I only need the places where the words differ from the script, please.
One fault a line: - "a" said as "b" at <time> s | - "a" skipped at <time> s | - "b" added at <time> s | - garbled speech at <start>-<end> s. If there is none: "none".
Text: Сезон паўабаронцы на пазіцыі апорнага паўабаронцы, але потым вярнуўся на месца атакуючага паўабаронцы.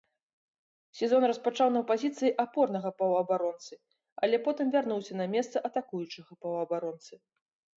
- "паўабаронцы" said as "распачаў" at 1.3 s